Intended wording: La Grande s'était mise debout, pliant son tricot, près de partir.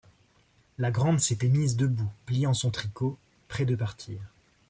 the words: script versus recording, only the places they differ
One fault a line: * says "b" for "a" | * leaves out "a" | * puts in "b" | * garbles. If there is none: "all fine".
all fine